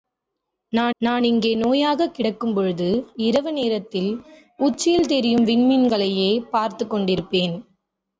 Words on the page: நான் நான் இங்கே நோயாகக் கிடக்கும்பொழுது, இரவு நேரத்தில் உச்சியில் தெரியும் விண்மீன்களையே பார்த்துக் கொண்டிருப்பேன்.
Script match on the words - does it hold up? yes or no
yes